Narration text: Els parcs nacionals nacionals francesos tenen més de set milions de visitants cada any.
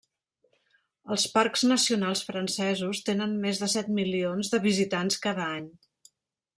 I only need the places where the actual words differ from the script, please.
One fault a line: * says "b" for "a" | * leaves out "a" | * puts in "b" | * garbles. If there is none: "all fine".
* leaves out "nacionals"